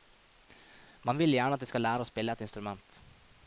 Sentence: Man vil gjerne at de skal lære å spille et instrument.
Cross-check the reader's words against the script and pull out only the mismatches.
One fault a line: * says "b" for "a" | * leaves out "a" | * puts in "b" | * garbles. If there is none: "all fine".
all fine